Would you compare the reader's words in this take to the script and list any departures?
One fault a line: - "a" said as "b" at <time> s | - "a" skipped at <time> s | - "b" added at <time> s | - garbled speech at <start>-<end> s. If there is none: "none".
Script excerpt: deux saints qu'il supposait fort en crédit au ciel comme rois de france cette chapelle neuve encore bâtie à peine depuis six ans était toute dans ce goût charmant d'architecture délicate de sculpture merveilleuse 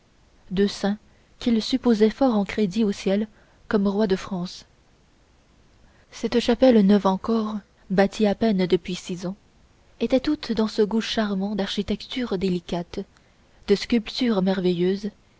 none